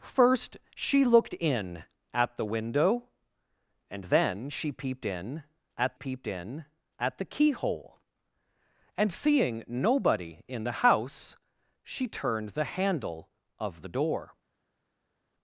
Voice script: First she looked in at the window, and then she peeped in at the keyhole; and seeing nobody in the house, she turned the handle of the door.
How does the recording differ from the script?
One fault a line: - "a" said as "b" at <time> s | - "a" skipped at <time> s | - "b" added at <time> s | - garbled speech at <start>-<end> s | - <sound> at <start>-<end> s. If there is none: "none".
- "peeped in at" added at 5.9 s